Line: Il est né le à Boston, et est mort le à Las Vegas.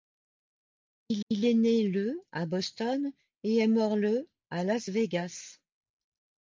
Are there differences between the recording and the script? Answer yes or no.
yes